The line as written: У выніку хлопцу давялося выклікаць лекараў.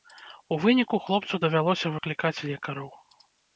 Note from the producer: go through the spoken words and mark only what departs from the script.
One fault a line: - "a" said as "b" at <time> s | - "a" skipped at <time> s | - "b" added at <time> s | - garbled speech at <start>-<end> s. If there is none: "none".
none